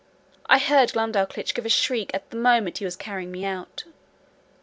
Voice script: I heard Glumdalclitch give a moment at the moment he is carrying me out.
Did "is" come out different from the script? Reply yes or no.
yes